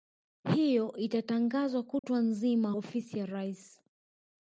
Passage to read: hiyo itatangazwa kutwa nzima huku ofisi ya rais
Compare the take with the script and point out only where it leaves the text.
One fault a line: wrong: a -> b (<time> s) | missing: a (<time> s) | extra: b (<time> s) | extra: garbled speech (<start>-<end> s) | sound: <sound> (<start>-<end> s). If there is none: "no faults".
sound: dropout (2.0-2.0 s)
missing: huku (2.7 s)